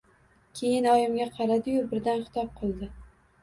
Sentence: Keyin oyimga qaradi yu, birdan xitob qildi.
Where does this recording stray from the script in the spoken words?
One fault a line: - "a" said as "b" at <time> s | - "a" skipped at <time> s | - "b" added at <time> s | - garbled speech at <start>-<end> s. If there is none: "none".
none